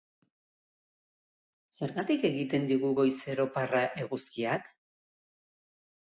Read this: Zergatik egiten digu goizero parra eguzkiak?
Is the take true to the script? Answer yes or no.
yes